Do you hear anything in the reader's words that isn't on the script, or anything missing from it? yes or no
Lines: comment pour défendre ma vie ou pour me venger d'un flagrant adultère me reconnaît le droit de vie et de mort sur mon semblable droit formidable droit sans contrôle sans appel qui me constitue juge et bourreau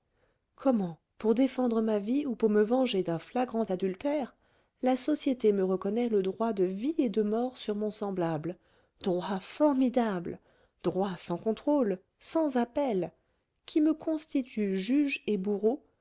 yes